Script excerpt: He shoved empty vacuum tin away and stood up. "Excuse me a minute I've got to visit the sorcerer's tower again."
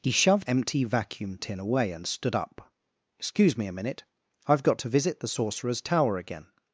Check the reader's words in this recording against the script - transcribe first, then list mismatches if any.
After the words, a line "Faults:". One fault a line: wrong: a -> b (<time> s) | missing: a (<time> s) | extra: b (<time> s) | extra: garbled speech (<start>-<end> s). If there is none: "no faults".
He shoved empty vacuum tin away and stood up. "Excuse me a minute I've got to visit the sorcerer's tower again."
Faults:
no faults